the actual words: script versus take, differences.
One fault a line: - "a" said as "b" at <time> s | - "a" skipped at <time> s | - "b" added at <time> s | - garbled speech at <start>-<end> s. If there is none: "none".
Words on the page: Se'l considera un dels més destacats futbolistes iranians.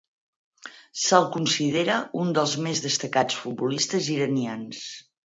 none